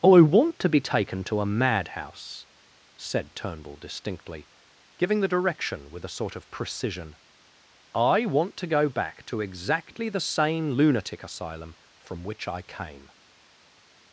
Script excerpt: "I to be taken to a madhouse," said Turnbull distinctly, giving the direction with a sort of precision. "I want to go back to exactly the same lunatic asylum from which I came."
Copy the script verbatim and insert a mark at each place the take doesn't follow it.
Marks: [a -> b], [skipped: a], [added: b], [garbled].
"I [added: want] to be taken to a madhouse," said Turnbull distinctly, giving the direction with a sort of precision. "I want to go back to exactly the same lunatic asylum from which I came."